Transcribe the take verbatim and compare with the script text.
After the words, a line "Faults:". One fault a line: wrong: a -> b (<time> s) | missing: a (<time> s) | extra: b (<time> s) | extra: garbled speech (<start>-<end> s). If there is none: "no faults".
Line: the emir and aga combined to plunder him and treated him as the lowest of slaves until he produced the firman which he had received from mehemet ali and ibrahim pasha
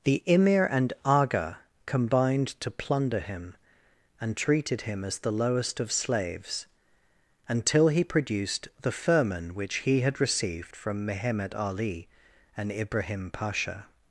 the emir and aga combined to plunder him and treated him as the lowest of slaves until he produced the firman which he had received from mehemet ali and ibrahim pasha
Faults:
no faults